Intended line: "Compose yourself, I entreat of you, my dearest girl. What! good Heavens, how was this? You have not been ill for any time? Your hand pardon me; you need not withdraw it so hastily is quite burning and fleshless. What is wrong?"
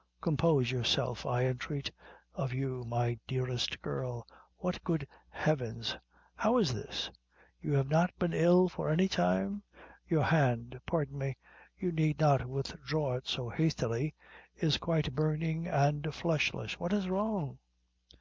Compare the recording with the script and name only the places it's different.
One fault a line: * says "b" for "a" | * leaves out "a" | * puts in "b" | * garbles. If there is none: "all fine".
* says "is" for "was"